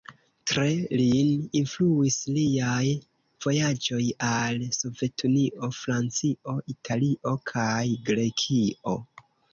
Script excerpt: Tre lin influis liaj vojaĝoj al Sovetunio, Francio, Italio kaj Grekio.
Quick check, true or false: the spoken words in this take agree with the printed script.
true